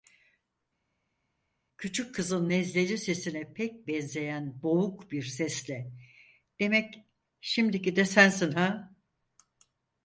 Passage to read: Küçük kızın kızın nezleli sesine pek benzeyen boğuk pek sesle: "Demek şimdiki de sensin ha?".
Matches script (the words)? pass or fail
fail